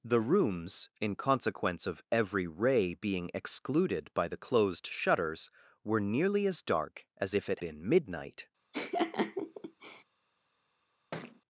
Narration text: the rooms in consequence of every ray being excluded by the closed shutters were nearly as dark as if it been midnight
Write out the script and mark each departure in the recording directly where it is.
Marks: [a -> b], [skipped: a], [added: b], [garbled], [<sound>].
the rooms in consequence of every ray being excluded by the closed shutters were nearly as dark as if it been midnight [laugh] [thud]